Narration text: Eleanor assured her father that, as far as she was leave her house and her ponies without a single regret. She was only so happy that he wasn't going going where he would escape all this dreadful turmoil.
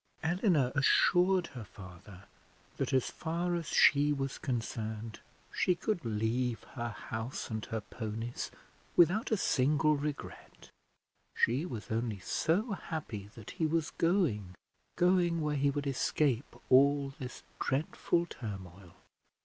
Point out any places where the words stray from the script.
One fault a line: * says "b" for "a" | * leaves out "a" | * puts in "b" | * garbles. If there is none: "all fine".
* puts in "concerned she could"
* says "was" for "wasn't"